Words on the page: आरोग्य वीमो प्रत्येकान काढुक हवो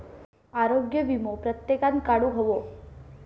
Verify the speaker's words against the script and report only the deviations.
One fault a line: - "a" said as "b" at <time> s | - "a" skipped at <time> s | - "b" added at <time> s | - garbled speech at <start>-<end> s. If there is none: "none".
none